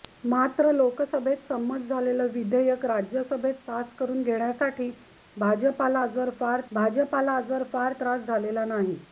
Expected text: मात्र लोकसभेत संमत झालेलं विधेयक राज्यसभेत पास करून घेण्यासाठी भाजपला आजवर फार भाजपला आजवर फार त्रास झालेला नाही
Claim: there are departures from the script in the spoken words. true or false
false